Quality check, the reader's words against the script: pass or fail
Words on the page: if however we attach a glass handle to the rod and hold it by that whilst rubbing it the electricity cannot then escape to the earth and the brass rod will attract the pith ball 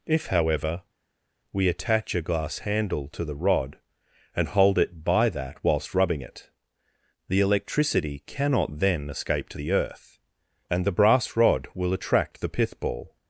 pass